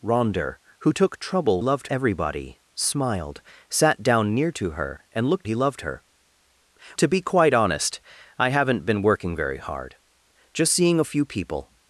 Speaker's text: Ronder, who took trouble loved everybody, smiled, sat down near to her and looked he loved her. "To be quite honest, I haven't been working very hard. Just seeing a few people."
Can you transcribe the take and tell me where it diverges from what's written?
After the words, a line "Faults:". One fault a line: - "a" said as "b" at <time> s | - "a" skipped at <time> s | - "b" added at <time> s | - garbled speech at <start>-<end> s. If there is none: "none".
Ronder, who took trouble loved everybody, smiled, sat down near to her and looked he loved her. "To be quite honest, I haven't been working very hard. Just seeing a few people."
Faults:
none